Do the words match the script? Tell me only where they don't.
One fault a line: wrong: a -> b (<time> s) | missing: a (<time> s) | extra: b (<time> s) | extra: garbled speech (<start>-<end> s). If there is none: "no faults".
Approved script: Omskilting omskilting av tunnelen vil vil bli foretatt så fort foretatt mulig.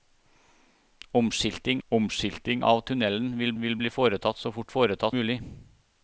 no faults